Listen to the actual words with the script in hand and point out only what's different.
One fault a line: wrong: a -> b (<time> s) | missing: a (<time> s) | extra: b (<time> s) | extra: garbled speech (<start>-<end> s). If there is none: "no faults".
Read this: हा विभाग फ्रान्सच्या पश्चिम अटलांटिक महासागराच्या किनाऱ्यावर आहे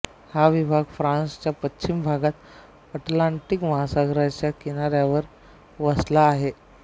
extra: भागात (2.0 s)
extra: वसला (5.8 s)